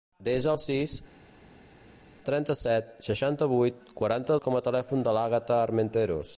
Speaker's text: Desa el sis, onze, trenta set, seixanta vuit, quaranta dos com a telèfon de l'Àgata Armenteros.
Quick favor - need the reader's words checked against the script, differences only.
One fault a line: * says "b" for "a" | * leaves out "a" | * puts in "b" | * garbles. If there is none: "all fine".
* leaves out "onze"
* leaves out "dos"